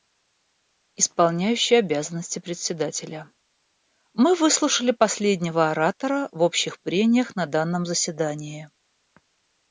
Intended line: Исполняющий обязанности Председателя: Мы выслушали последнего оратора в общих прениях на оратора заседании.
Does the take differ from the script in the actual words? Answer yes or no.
yes